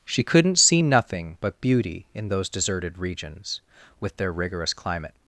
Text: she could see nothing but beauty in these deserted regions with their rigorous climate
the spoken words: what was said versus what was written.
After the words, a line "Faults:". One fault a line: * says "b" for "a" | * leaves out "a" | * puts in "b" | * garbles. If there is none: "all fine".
she couldn't see nothing but beauty in those deserted regions with their rigorous climate
Faults:
* says "couldn't" for "could"
* says "those" for "these"